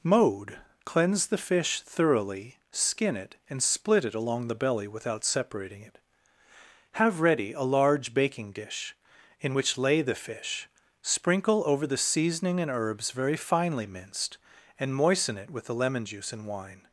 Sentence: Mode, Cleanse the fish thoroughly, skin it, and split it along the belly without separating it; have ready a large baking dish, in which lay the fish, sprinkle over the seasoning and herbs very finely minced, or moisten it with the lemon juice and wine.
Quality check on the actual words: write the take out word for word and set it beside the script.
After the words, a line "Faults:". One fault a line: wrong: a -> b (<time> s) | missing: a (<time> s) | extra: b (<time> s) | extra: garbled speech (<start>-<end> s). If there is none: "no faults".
Mode, Cleanse the fish thoroughly, skin it, and split it along the belly without separating it; have ready a large baking dish, in which lay the fish, sprinkle over the seasoning and herbs very finely minced, and moisten it with the lemon juice and wine.
Faults:
wrong: or -> and (14.8 s)